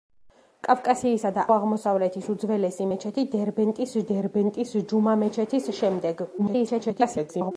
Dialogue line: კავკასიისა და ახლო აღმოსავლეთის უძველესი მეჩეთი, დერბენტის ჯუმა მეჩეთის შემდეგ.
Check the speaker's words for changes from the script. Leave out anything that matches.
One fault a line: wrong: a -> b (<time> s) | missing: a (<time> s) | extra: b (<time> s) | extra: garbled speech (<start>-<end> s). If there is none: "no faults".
missing: ახლო (1.4 s)
extra: დერბენტის (4.1 s)
extra: garbled speech (6.4-7.5 s)